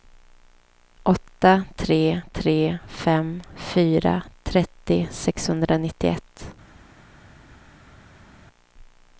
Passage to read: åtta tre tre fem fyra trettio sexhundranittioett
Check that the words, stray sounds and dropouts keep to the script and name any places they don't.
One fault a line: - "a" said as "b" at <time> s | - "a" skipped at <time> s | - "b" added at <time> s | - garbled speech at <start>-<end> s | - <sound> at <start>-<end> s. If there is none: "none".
none